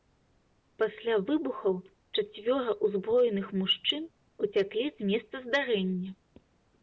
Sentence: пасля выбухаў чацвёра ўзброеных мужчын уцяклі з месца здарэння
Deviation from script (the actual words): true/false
false